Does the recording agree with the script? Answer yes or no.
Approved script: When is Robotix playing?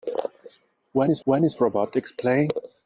no